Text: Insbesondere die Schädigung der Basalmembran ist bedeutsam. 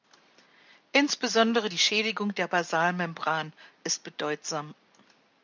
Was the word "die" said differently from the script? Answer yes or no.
no